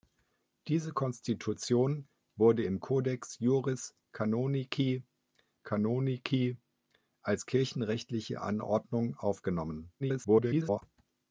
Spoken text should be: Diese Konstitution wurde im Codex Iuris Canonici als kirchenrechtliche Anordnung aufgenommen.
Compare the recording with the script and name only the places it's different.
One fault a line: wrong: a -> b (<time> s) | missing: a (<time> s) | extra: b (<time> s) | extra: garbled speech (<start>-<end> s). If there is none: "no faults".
extra: Canonici (5.6 s)
extra: garbled speech (10.0-10.8 s)